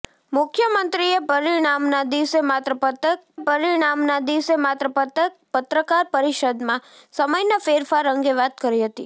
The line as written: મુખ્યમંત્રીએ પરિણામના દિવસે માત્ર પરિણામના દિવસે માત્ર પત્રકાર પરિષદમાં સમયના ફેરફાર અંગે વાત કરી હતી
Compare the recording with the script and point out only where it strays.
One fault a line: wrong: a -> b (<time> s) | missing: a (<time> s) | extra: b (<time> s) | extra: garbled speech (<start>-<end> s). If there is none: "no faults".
no faults